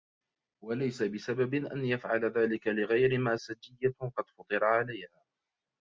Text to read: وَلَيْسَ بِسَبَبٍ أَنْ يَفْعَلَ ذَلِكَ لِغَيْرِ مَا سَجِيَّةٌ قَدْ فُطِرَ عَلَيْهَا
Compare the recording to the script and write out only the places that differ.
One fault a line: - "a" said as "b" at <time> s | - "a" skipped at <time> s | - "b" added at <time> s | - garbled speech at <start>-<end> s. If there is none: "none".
none